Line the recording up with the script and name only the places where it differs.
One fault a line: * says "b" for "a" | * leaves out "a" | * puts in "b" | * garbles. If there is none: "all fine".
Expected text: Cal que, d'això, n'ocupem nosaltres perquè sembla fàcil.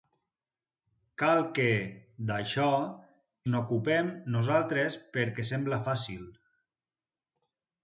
all fine